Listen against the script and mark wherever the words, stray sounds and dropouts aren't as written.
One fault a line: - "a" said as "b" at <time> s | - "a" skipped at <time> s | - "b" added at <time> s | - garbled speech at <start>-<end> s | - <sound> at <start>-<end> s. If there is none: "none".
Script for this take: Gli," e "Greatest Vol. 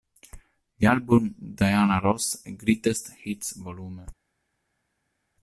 - "album Diana Ross" added at 0.8 s
- "Hits" added at 3.2 s